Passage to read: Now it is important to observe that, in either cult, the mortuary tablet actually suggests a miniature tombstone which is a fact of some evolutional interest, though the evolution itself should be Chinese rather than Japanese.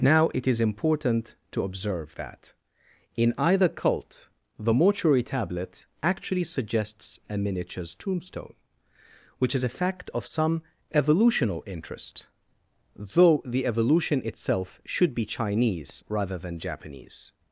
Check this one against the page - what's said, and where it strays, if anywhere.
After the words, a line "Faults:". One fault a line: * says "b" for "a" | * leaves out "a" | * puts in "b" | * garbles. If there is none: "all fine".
Now it is important to observe that, in either cult, the mortuary tablet actually suggests a miniatures tombstone which is a fact of some evolutional interest, though the evolution itself should be Chinese rather than Japanese.
Faults:
* says "miniatures" for "miniature"